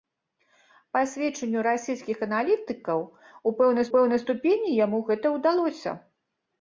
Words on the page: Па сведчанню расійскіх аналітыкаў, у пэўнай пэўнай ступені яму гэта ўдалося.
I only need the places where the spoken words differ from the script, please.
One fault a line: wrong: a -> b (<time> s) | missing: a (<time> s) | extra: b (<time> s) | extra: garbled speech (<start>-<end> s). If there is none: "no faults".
no faults